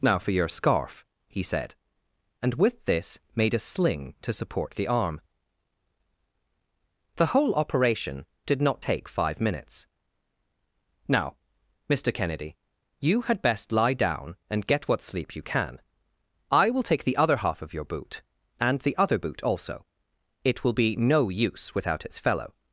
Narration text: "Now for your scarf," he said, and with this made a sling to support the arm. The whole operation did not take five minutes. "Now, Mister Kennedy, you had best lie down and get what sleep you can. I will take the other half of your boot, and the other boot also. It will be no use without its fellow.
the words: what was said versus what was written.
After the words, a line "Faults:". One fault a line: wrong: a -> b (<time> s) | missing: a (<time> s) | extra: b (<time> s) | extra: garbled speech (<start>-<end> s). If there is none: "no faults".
"Now for your scarf," he said, and with this made a sling to support the arm. The whole operation did not take five minutes. "Now, Mister Kennedy, you had best lie down and get what sleep you can. I will take the other half of your boot, and the other boot also. It will be no use without its fellow.
Faults:
no faults